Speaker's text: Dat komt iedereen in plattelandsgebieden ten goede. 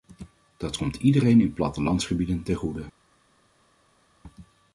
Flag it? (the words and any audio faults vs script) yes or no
no